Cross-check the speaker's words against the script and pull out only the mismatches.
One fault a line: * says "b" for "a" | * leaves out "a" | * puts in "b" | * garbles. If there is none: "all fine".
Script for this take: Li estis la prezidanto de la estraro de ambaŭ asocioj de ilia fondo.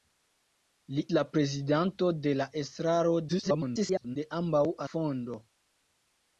* leaves out "estis"
* garbles
* leaves out "asocioj de ilia"